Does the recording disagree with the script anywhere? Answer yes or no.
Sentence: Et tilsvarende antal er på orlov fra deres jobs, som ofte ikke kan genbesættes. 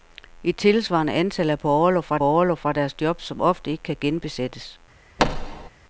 yes